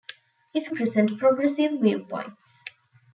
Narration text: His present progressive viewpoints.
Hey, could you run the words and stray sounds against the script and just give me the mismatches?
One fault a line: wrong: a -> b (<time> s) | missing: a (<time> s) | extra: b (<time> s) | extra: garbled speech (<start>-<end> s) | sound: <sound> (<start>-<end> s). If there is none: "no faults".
no faults